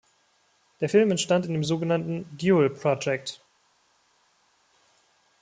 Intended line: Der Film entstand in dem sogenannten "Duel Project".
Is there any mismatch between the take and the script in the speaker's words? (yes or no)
no